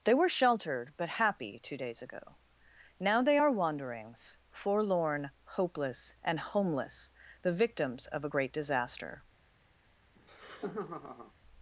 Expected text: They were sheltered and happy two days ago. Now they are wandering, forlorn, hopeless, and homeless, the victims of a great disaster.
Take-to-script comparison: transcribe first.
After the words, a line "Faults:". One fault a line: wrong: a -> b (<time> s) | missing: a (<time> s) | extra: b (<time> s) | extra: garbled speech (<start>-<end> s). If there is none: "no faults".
They were sheltered but happy two days ago. Now they are wanderings, forlorn, hopeless, and homeless, the victims of a great disaster.
Faults:
wrong: and -> but (1.0 s)
wrong: wandering -> wanderings (3.5 s)